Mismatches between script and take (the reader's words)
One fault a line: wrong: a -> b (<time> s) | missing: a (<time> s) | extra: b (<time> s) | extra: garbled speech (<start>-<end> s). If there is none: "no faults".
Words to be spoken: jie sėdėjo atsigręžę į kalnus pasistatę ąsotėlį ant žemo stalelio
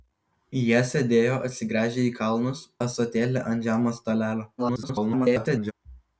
missing: pasistatę (2.6 s)
extra: garbled speech (4.6-5.7 s)